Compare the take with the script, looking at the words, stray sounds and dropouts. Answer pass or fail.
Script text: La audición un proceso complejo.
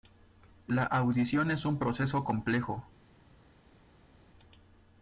fail